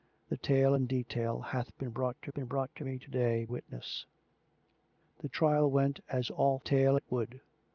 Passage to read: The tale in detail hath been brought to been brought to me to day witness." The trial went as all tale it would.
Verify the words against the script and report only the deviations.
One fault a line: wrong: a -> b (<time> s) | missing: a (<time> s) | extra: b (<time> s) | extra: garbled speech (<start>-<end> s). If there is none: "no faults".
no faults